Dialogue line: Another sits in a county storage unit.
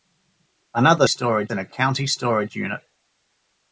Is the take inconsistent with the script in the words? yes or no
yes